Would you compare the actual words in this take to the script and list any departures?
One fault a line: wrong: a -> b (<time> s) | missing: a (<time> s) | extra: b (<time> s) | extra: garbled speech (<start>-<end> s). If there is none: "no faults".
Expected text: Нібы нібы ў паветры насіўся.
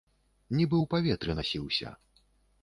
missing: нібы (0.8 s)